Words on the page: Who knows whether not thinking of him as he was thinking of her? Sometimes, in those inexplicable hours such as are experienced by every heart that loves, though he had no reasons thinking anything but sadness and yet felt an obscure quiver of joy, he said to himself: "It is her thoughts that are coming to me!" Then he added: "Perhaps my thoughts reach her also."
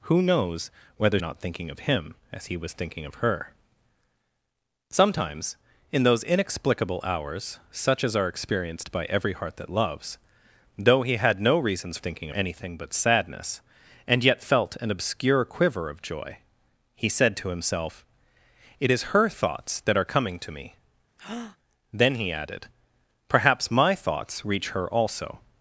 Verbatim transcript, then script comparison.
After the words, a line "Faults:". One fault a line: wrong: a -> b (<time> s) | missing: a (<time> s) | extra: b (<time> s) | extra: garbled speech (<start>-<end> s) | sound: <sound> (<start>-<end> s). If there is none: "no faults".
Who knows whether not thinking of him as he was thinking of her? Sometimes, in those inexplicable hours such as are experienced by every heart that loves, though he had no reasons thinking anything but sadness and yet felt an obscure quiver of joy, he said to himself: "It is her thoughts that are coming to me!" Then he added: "Perhaps my thoughts reach her also."
Faults:
sound: breath (21.2-21.6 s)